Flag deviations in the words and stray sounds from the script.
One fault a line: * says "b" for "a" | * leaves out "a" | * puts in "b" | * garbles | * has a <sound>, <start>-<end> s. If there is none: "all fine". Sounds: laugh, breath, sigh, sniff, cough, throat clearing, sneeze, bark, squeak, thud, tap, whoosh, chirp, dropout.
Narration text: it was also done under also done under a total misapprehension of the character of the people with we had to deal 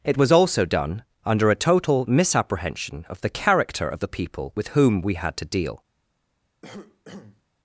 * leaves out "also done under"
* puts in "whom"
* has a cough, 6.6-7.4 s